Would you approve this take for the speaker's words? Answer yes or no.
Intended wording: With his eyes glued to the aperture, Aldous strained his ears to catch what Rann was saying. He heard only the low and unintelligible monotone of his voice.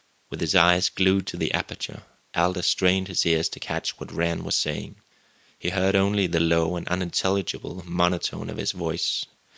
yes